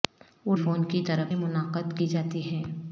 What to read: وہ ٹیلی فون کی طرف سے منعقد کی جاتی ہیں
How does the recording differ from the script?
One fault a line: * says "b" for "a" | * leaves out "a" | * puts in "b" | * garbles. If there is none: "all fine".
* leaves out "ٹیلی"
* leaves out "سے"